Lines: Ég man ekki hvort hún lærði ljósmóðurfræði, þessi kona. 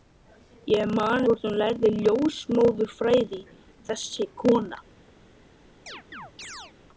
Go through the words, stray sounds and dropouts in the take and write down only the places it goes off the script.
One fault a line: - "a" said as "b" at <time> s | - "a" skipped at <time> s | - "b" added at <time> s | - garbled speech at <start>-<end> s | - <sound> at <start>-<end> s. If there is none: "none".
- "ekki" skipped at 1.3 s
- chirp at 5.9-6.7 s